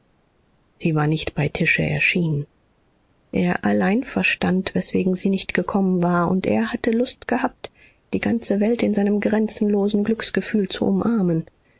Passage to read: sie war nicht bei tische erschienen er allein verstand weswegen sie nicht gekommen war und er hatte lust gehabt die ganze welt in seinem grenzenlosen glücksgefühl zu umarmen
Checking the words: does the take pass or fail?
pass